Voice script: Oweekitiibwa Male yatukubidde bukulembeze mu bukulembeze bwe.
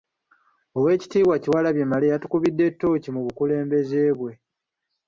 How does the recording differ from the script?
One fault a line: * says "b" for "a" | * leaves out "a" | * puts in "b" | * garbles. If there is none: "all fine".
* puts in "Kyewalabye"
* says "ttooki" for "bukulembeze"